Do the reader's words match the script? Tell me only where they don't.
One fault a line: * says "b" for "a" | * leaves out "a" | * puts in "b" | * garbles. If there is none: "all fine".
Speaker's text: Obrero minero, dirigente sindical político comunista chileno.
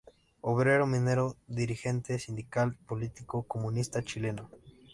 all fine